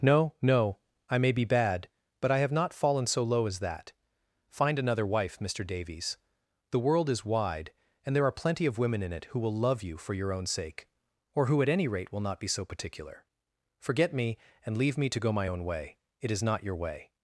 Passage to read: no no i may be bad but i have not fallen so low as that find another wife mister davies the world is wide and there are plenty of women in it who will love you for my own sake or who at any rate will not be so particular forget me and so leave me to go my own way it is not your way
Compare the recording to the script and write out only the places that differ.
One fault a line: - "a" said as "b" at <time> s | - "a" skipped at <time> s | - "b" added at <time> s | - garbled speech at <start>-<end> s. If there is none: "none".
- "my" said as "your" at 10.2 s
- "so" skipped at 14.8 s